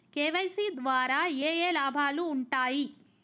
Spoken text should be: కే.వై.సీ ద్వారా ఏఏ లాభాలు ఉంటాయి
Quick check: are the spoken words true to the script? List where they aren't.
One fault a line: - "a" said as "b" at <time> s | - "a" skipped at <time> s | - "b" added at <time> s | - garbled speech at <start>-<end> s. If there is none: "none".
none